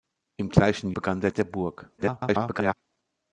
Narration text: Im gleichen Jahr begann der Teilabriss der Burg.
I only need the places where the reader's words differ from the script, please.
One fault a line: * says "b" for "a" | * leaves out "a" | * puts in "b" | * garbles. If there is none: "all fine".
* leaves out "Jahr"
* leaves out "Teilabriss"
* garbles